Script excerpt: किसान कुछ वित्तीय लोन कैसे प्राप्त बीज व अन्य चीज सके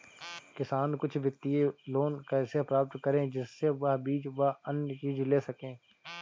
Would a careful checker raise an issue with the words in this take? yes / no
yes